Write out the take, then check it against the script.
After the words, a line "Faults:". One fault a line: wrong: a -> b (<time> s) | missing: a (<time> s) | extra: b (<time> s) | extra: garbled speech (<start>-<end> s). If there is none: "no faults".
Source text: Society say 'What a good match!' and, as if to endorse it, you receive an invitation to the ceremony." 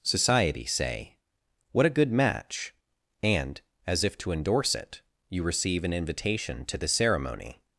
Society say 'What a good match!' and, as if to endorse it, you receive an invitation to the ceremony."
Faults:
no faults